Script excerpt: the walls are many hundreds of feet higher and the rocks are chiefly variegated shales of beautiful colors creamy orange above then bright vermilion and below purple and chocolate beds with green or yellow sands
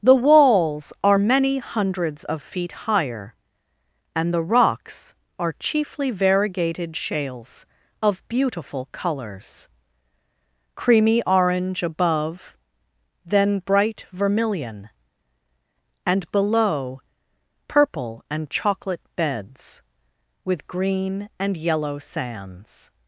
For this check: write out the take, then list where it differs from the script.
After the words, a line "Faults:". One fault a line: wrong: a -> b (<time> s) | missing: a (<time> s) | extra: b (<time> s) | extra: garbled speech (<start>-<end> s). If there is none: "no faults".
the walls are many hundreds of feet higher and the rocks are chiefly variegated shales of beautiful colors creamy orange above then bright vermilion and below purple and chocolate beds with green and yellow sands
Faults:
wrong: or -> and (21.4 s)